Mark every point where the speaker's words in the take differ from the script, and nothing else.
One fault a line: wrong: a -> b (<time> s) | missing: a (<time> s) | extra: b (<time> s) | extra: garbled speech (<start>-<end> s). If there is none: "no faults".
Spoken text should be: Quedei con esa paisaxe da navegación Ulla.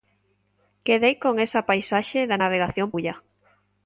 no faults